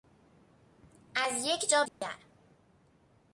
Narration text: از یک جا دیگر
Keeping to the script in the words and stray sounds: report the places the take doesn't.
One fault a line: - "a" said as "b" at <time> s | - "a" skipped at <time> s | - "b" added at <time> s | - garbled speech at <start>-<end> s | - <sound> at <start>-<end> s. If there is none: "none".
- dropout at 1.9-2.0 s